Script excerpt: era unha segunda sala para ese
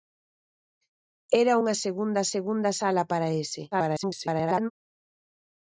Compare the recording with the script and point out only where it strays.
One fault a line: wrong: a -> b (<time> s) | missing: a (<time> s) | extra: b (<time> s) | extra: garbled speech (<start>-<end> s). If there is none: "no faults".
extra: segunda (2.3 s)
extra: garbled speech (3.7-4.7 s)